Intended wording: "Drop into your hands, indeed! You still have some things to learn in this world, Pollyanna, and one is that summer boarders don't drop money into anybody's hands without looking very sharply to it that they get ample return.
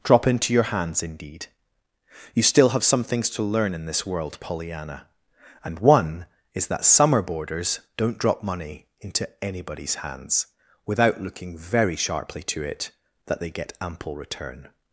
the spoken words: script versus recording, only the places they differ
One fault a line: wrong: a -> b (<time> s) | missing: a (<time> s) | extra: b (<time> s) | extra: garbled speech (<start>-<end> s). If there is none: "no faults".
no faults